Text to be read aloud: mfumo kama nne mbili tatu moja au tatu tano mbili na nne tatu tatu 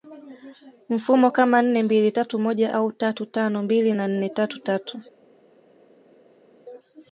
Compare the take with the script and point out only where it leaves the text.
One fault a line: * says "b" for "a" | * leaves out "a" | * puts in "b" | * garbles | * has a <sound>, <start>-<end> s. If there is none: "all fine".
all fine